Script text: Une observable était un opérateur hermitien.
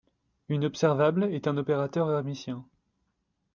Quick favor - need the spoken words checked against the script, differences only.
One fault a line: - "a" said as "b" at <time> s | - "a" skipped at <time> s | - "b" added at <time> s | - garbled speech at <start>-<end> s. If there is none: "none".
- "était" said as "est" at 1.2 s